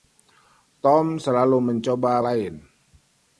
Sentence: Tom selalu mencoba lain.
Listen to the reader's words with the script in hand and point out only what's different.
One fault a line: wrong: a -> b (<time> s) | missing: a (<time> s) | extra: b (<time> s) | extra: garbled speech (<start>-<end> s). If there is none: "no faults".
no faults